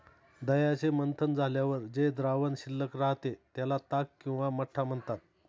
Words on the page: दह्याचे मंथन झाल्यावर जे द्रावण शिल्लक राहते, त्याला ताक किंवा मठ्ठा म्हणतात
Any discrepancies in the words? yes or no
no